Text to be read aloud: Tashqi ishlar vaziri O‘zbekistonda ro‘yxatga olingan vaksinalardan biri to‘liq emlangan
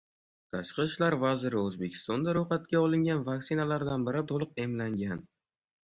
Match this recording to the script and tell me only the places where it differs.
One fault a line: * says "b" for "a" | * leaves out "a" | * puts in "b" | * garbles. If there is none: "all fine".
all fine